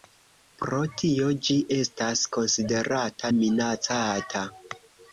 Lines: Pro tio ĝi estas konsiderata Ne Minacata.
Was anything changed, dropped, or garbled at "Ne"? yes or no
yes